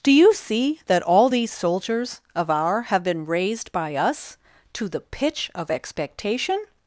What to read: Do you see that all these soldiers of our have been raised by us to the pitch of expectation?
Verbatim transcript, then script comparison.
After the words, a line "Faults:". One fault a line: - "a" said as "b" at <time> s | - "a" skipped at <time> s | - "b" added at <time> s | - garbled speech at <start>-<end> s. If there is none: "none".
Do you see that all these soldiers of our have been raised by us to the pitch of expectation?
Faults:
none